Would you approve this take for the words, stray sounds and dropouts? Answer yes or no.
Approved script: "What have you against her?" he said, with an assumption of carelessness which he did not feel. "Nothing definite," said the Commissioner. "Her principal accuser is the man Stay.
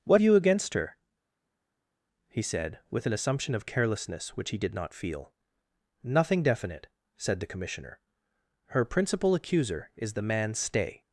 no